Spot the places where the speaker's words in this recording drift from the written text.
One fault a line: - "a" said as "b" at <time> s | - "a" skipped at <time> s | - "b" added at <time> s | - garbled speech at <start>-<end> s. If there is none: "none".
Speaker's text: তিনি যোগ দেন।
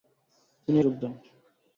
none